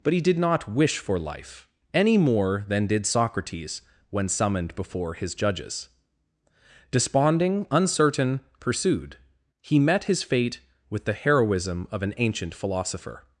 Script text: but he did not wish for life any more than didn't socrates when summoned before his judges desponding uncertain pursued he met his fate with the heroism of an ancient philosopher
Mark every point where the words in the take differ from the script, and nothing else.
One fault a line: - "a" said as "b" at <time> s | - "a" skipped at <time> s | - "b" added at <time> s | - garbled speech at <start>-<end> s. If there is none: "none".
- "didn't" said as "did" at 2.9 s